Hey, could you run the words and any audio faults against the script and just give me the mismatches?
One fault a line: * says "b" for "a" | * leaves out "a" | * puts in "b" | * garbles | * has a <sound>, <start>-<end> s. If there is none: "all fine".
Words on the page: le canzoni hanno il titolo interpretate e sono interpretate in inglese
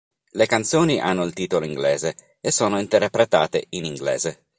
* says "inglese" for "interpretate"